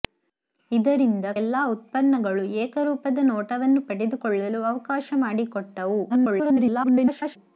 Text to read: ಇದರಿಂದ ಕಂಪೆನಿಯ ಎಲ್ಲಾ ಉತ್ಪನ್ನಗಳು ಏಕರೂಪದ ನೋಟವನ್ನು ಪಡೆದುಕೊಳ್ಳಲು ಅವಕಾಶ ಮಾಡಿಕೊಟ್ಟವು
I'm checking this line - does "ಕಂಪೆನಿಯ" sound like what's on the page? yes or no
no